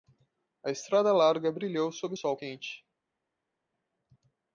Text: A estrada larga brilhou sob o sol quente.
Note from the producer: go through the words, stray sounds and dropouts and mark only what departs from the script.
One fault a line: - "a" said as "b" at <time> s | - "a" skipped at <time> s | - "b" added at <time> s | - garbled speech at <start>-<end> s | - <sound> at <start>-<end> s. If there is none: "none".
none